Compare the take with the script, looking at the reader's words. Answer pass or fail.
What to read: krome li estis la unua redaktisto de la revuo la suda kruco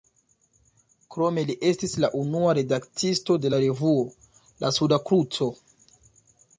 pass